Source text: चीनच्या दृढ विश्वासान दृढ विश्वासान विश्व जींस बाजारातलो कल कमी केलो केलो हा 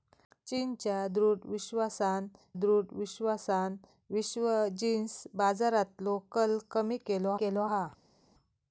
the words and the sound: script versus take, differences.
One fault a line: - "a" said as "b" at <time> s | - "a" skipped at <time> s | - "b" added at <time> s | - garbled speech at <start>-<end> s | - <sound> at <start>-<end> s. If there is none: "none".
none